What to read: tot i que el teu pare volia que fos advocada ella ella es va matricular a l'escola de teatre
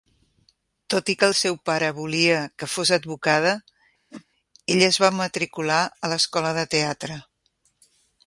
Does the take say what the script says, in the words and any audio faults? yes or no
no